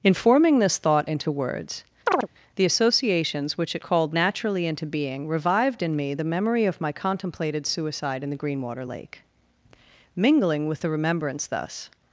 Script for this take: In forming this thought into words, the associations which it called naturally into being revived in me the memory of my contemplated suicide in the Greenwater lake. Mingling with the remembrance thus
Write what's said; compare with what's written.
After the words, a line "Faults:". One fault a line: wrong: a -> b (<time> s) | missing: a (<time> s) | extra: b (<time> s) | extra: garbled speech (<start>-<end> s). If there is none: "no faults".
In forming this thought into words, the associations which it called naturally into being revived in me the memory of my contemplated suicide in the Greenwater lake. Mingling with the remembrance thus
Faults:
no faults